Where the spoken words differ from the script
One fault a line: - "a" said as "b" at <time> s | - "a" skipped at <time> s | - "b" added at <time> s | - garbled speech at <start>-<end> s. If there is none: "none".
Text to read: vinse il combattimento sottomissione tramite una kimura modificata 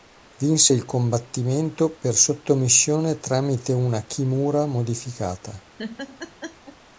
- "per" added at 1.9 s